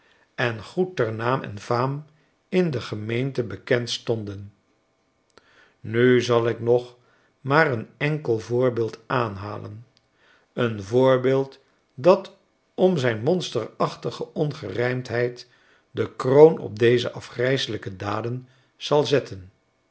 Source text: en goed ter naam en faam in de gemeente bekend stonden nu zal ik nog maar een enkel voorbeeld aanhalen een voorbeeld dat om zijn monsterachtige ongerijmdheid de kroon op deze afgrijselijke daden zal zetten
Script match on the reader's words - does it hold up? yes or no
yes